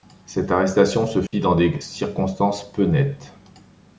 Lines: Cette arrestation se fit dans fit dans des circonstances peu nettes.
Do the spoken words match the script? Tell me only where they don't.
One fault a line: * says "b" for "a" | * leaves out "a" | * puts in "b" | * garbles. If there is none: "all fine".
* leaves out "fit dans"